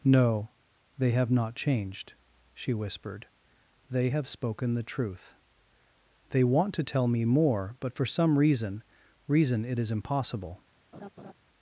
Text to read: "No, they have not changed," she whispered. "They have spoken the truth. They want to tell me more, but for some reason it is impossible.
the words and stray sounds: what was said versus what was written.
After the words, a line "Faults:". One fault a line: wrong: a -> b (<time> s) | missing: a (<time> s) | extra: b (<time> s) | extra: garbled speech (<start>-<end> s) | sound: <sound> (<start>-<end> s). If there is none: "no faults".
"No, they have not changed," she whispered. "They have spoken the truth. They want to tell me more, but for some reason reason it is impossible.
Faults:
extra: reason (9.3 s)
sound: laugh (10.9-11.3 s)